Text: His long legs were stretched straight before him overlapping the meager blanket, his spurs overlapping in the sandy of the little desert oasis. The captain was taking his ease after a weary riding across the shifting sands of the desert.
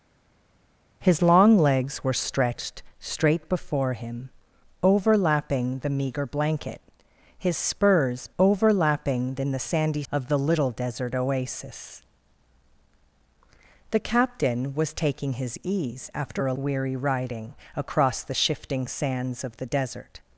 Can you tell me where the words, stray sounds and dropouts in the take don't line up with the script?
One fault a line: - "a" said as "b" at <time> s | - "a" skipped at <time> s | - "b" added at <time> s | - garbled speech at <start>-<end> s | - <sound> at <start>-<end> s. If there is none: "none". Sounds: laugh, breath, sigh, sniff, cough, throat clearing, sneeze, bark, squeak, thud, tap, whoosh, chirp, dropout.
none